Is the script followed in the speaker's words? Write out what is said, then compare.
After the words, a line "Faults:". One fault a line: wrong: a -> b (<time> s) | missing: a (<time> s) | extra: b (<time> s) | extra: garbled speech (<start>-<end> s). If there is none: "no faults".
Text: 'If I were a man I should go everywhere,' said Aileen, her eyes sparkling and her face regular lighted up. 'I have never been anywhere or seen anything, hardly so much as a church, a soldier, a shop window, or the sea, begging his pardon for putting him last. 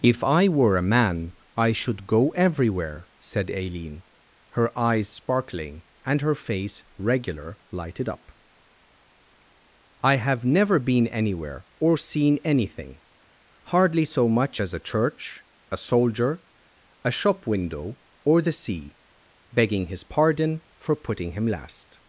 'If I were a man I should go everywhere,' said Aileen, her eyes sparkling and her face regular lighted up. 'I have never been anywhere or seen anything, hardly so much as a church, a soldier, a shop window, or the sea, begging his pardon for putting him last.
Faults:
no faults